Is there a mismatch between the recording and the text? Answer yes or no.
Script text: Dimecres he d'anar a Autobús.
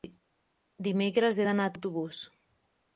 no